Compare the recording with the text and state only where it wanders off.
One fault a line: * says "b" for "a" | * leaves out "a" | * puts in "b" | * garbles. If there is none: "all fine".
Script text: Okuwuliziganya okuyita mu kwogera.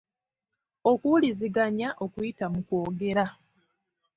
all fine